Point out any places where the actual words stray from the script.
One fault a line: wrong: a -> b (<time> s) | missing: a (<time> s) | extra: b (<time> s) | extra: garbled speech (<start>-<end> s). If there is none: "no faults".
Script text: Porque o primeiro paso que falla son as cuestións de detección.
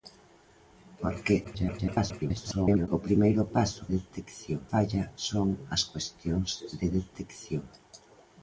extra: garbled speech (1.4-2.9 s)
wrong: que -> detección (4.0 s)